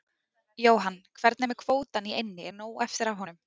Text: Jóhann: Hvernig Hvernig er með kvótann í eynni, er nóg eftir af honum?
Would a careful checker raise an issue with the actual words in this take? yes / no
yes